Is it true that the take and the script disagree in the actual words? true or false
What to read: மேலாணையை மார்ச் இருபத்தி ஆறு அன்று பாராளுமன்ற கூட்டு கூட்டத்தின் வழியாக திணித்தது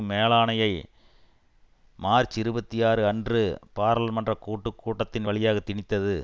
false